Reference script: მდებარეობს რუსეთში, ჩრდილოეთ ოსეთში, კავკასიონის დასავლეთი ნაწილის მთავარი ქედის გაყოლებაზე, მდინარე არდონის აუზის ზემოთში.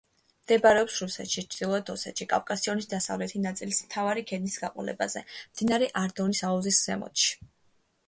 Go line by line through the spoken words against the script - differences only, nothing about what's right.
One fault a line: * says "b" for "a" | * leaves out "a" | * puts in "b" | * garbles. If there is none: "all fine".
all fine